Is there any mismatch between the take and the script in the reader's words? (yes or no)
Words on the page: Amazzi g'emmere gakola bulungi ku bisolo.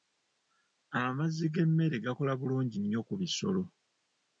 yes